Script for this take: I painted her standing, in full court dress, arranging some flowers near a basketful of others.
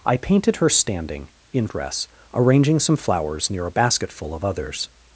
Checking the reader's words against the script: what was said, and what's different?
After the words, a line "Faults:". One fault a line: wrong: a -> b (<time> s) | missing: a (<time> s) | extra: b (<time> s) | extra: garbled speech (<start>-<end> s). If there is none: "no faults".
I painted her standing, in dress, arranging some flowers near a basketful of others.
Faults:
missing: full court (1.7 s)